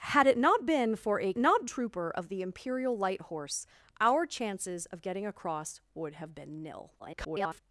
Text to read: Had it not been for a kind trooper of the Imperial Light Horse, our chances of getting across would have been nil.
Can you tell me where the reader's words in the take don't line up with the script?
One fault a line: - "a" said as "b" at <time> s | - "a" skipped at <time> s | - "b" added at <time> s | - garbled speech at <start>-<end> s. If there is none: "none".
- "kind" said as "not" at 1.4 s
- garbled speech at 7.0-7.6 s